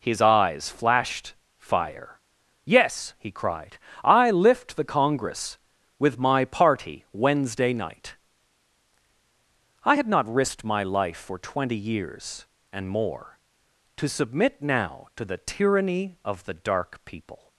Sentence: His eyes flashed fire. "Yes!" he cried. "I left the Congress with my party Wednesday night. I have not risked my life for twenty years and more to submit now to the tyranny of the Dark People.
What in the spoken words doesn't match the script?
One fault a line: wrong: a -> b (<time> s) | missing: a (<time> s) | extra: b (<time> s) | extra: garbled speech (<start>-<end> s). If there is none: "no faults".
wrong: left -> lift (4.3 s)
wrong: have -> had (9.9 s)